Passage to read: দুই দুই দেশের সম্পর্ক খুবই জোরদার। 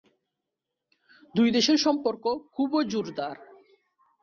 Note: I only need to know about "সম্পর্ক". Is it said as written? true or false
true